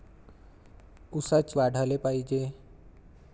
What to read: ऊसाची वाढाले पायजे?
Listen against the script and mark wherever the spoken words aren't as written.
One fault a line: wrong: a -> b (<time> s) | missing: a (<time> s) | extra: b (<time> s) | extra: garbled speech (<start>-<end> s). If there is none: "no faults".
no faults